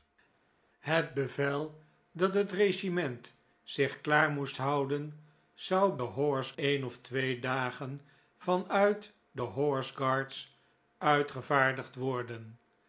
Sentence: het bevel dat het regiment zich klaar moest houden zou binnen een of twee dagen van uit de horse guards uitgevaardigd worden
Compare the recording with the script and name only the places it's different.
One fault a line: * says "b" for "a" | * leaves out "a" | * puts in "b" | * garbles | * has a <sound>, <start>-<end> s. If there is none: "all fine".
* says "horse" for "binnen"